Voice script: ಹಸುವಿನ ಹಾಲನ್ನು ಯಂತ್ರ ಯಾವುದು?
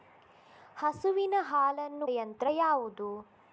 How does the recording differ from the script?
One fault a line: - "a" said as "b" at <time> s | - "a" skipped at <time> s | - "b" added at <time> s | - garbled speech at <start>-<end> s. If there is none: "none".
none